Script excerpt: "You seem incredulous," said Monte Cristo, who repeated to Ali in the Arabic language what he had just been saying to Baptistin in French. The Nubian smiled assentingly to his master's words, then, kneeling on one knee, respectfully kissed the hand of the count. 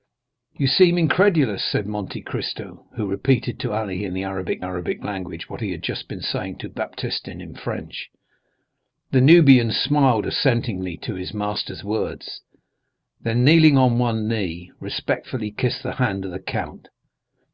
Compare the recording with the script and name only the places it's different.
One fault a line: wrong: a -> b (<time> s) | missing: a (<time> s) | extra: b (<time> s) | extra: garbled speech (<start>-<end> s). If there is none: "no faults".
extra: Arabic (4.6 s)